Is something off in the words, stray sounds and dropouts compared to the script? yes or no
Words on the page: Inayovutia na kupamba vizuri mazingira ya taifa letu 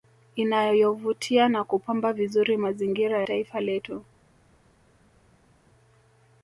yes